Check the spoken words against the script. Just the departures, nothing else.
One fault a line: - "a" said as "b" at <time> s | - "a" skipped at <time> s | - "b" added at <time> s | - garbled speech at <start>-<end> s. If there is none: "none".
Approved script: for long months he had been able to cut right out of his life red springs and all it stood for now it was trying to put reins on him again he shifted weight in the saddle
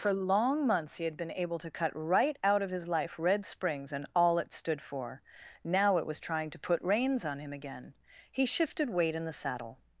none